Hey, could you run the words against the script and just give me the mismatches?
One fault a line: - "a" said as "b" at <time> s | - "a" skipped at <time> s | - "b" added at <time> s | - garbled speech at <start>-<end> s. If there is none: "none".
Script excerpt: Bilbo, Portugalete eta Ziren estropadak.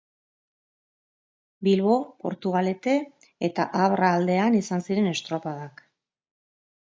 - "Abra aldean izan" added at 3.8 s